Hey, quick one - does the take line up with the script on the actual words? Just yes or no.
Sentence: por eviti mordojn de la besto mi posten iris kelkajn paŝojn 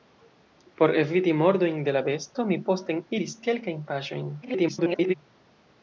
no